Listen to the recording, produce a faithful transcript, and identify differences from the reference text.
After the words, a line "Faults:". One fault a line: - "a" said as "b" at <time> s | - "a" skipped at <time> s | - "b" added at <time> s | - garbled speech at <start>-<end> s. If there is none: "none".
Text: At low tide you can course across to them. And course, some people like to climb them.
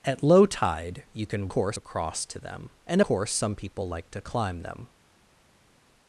At low tide you can course across to them. And course, some people like to climb them.
Faults:
none